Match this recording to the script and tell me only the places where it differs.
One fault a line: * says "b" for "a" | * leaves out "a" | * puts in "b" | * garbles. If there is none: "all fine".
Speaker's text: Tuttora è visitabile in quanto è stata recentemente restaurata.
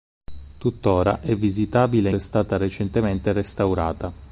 * leaves out "in quanto"